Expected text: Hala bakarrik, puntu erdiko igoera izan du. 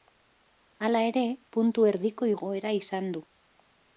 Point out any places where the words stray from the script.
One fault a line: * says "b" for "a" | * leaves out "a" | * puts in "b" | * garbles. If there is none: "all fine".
* says "ere" for "bakarrik"